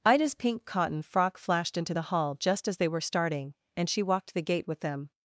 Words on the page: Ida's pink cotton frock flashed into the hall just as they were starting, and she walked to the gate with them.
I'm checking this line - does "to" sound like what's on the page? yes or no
no